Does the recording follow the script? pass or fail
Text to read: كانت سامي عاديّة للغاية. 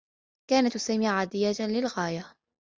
pass